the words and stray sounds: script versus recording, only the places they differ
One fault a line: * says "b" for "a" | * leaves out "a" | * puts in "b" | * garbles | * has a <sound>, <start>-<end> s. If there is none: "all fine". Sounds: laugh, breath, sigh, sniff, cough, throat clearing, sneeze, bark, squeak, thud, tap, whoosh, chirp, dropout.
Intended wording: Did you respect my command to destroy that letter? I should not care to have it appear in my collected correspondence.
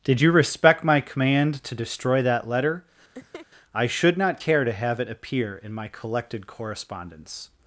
* has a laugh, 3.1-3.5 s